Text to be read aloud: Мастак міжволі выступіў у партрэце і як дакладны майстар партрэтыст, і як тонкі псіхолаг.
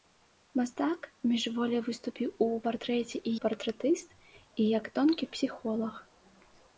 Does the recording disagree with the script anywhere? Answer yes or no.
yes